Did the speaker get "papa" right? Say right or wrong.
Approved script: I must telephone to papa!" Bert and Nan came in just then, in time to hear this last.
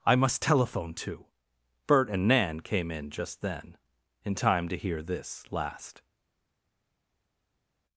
wrong